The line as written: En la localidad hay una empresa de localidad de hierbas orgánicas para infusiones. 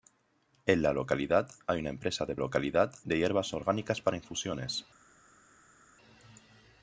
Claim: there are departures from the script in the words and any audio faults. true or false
false